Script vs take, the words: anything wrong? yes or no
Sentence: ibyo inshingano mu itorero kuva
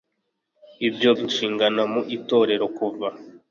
no